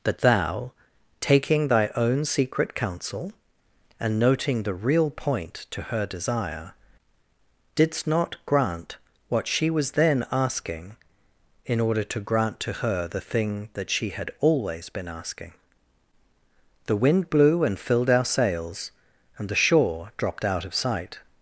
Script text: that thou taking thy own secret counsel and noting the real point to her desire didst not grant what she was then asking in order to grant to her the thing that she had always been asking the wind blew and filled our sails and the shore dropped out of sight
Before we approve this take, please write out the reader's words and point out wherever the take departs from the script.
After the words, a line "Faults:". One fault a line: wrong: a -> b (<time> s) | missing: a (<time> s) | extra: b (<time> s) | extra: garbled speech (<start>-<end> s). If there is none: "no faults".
that thou taking thy own secret counsel and noting the real point to her desire didst not grant what she was then asking in order to grant to her the thing that she had always been asking the wind blew and filled our sails and the shore dropped out of sight
Faults:
no faults